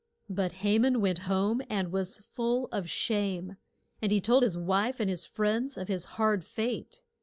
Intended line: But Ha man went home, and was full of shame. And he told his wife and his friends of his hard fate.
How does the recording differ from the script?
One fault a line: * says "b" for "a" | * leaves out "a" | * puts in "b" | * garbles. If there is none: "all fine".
all fine